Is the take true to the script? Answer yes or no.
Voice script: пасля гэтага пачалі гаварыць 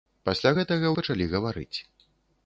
yes